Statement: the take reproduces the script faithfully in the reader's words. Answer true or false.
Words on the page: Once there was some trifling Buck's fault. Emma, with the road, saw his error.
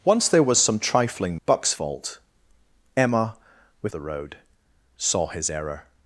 true